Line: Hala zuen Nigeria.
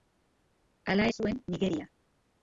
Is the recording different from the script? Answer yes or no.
no